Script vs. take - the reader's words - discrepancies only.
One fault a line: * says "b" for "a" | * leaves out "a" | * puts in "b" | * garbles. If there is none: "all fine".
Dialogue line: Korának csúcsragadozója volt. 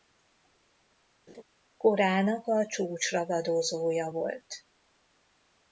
* puts in "a"